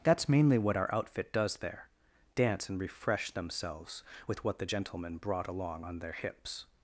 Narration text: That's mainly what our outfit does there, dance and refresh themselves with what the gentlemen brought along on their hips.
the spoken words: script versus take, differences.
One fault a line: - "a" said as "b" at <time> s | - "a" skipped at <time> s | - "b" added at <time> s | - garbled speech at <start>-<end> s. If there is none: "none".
none